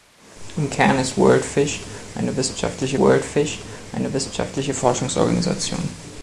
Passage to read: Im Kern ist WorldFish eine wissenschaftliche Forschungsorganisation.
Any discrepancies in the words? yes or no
yes